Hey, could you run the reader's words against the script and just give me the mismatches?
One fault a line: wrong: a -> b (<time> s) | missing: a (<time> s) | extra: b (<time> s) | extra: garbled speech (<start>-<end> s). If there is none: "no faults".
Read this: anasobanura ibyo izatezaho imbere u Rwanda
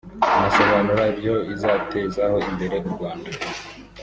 no faults